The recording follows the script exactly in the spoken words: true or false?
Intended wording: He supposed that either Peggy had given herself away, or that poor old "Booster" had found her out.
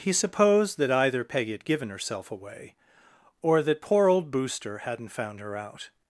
false